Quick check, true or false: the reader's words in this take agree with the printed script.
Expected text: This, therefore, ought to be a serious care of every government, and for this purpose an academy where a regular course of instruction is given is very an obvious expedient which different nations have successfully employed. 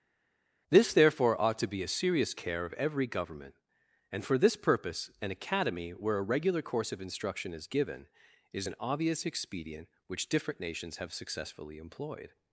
false